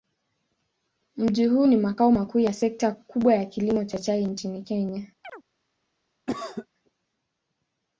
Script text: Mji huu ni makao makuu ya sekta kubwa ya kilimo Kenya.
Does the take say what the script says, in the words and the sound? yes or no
no